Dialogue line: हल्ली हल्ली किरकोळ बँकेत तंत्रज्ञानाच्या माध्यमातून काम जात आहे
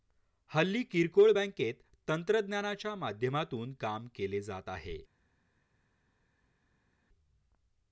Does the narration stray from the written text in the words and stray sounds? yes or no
yes